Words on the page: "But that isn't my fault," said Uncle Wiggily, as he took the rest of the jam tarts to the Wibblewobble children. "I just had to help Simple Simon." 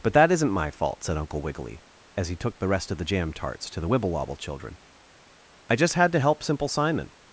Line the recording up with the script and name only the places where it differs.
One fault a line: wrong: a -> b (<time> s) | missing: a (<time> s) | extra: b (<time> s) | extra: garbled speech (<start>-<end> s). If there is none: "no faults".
no faults